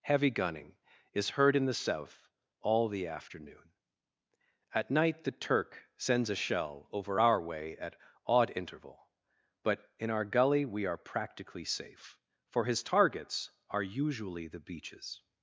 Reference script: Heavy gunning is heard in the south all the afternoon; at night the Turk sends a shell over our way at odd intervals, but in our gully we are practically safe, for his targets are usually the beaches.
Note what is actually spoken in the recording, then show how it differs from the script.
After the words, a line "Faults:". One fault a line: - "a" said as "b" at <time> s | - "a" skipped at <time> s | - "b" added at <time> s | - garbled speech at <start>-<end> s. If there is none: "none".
Heavy gunning is heard in the south all the afternoon; at night the Turk sends a shell over our way at odd interval, but in our gully we are practically safe, for his targets are usually the beaches.
Faults:
- "intervals" said as "interval" at 8.5 s